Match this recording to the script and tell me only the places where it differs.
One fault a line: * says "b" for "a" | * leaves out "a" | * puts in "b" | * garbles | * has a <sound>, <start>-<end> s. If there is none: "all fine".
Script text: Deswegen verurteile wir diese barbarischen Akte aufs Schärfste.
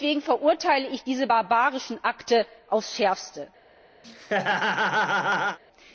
* says "ich" for "wir"
* has a laugh, 4.0-5.6 s